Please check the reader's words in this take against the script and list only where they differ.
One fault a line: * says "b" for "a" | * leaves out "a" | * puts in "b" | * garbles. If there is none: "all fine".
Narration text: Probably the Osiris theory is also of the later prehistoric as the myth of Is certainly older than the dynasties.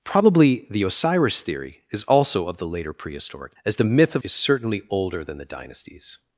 all fine